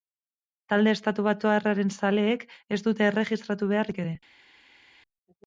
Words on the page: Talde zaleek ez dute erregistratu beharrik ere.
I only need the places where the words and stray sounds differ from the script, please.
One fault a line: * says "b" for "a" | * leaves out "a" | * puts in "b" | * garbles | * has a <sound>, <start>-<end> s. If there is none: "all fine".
* puts in "estatubatuarraren"